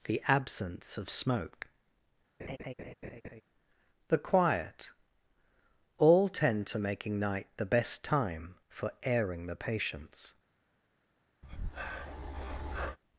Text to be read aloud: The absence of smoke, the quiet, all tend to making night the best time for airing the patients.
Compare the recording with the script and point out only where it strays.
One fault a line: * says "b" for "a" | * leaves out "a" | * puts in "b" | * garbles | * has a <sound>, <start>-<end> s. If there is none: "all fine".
* has a laugh, 2.4-3.4 s
* has a breath, 11.4-13.0 s